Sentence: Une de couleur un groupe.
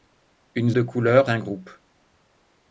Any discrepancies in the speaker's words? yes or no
no